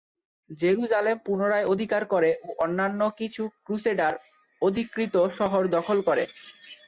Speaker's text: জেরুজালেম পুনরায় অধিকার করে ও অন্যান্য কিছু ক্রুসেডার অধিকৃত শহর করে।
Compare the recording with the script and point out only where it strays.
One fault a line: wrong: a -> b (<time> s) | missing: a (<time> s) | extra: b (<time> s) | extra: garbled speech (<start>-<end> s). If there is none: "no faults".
extra: দখল (5.8 s)